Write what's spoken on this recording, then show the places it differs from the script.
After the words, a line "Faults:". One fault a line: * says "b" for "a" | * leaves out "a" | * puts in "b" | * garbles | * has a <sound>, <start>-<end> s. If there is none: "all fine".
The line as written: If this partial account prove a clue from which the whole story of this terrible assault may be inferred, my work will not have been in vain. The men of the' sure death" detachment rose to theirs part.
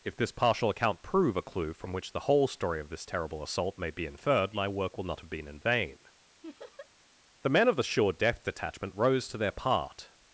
If this partial account prove a clue from which the whole story of this terrible assault may be inferred, my work will not have been in vain. The men of the' sure death" detachment rose to their part.
Faults:
* has a laugh, 6.4-6.9 s
* says "their" for "theirs"